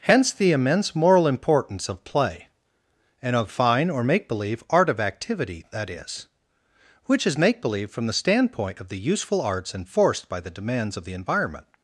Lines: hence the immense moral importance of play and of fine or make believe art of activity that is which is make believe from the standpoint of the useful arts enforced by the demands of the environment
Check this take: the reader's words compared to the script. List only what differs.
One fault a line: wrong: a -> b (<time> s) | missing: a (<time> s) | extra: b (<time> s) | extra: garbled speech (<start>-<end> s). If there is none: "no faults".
no faults